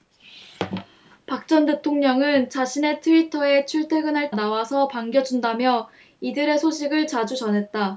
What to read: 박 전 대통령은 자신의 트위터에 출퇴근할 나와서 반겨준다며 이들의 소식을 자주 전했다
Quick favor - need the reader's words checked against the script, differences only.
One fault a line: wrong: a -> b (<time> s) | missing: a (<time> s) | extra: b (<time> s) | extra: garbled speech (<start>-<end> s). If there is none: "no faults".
no faults